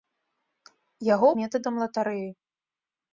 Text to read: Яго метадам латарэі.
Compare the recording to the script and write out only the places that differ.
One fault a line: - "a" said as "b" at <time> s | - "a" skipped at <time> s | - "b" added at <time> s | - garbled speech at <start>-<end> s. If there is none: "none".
none